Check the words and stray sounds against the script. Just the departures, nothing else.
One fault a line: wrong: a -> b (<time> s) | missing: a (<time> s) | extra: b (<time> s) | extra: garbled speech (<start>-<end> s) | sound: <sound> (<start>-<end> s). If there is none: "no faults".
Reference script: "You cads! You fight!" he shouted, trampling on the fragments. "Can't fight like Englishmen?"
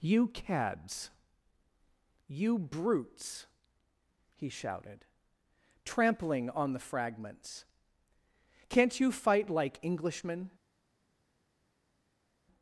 wrong: fight -> brutes (2.6 s)
extra: you (9.0 s)